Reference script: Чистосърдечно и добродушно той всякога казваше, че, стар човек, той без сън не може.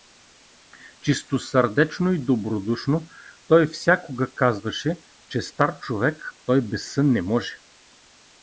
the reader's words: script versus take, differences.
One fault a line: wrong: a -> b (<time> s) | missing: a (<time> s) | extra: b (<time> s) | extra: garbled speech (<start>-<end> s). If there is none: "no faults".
no faults